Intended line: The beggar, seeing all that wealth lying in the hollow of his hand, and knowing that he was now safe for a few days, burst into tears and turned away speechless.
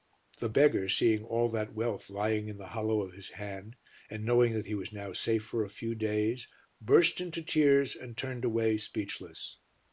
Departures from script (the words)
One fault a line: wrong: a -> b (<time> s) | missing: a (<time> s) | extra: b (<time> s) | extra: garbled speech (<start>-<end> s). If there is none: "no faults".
no faults